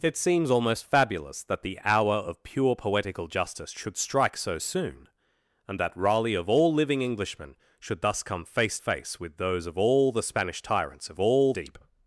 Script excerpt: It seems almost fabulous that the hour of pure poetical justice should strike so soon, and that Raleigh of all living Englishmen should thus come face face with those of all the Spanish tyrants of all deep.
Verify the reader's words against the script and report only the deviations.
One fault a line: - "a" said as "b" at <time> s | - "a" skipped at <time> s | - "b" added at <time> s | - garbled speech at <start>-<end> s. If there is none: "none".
none